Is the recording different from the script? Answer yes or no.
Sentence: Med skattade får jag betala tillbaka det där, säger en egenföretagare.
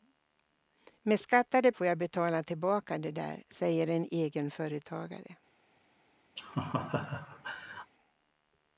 no